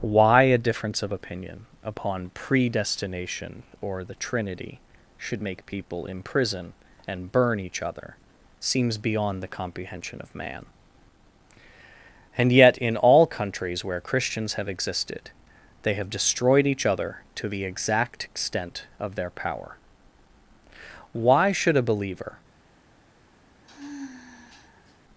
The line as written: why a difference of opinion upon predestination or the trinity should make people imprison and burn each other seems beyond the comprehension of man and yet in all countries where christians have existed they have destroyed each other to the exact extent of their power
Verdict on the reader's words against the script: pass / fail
fail